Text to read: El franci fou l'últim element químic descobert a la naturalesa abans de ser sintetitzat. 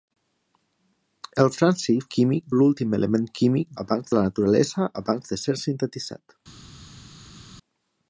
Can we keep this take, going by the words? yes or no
no